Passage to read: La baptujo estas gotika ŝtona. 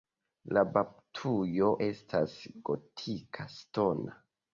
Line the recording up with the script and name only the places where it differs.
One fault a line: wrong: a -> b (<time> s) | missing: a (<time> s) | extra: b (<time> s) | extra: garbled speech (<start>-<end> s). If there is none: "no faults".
no faults